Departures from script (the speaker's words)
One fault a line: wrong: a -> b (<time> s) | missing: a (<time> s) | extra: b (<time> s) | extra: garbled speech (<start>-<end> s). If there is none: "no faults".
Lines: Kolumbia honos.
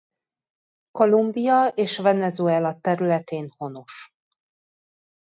extra: és Venezuela területén (1.7 s)